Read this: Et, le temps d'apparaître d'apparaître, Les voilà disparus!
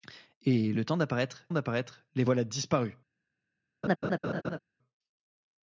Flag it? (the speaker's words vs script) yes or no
no